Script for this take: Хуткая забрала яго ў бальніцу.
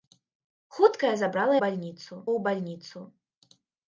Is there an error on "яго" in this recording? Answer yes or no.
yes